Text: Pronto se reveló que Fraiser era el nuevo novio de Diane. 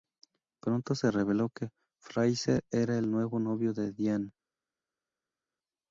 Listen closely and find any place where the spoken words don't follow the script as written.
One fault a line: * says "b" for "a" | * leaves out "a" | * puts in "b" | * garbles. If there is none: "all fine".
all fine